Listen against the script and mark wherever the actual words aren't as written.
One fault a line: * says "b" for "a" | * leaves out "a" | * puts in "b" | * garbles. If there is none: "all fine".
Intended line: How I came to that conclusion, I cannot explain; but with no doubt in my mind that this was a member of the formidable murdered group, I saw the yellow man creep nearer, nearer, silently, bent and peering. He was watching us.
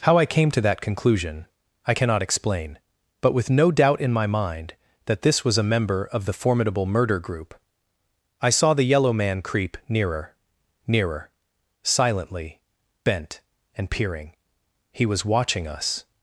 * says "murder" for "murdered"